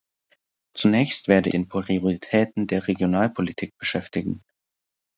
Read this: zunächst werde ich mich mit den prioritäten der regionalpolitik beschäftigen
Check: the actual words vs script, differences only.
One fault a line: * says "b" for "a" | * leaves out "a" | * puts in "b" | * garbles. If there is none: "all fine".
* leaves out "ich mich mit"